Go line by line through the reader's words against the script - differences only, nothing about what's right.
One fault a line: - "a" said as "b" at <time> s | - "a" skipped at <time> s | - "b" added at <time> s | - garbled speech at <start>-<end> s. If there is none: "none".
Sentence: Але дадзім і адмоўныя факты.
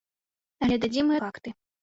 - "адмоўныя" skipped at 1.2 s